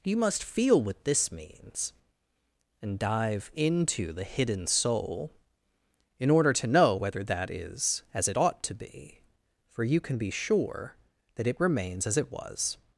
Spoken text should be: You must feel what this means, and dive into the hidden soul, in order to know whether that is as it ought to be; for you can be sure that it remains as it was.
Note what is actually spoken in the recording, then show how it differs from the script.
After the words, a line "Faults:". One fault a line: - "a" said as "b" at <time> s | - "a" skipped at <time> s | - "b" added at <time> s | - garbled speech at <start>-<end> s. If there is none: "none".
You must feel what this means, and dive into the hidden soul, in order to know whether that is as it ought to be; for you can be sure that it remains as it was.
Faults:
none